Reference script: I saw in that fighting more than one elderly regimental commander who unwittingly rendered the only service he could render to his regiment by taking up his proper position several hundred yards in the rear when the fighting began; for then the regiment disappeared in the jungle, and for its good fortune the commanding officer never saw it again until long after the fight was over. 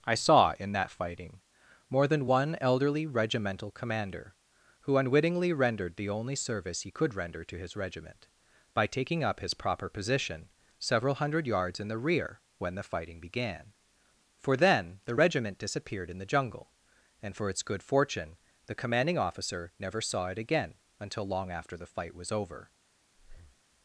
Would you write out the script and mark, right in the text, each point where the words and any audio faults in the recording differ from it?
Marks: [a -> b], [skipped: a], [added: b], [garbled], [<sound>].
I saw in that fighting more than one elderly regimental commander who unwittingly rendered the only service he could render to his regiment by taking up his proper position several hundred yards in the rear when the fighting began; for then the regiment disappeared in the jungle, and for its good fortune the commanding officer never saw it again until long after the fight was over. [breath]